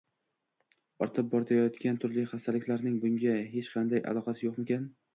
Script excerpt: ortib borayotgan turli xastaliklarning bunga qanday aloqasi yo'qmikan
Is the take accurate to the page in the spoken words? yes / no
no